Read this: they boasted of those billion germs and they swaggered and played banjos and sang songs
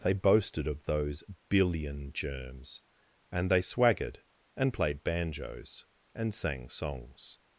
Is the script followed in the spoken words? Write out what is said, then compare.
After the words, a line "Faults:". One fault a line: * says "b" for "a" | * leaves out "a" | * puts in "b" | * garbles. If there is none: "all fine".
they boasted of those billion germs and they swaggered and played banjos and sang songs
Faults:
all fine